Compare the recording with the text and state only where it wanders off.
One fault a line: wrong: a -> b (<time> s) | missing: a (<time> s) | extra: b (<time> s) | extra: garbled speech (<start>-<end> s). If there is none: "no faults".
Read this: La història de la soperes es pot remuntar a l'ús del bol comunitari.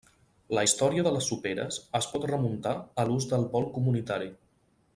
wrong: la -> les (1.1 s)